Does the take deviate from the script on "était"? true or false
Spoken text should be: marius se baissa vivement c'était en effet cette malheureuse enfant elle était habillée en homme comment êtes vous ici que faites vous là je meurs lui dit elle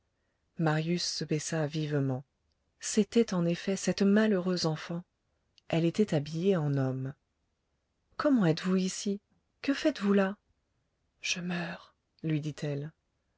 false